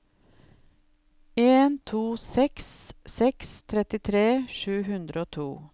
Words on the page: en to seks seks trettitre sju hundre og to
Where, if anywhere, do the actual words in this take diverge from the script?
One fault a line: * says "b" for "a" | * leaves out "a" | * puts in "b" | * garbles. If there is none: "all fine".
all fine